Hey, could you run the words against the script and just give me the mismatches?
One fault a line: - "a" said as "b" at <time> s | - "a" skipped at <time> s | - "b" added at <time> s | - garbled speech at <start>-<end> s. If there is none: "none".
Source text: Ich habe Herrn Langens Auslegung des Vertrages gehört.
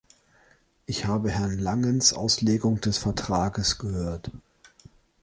none